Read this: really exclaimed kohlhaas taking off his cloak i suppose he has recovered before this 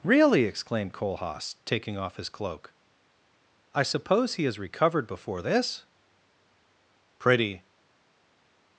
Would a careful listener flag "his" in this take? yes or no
no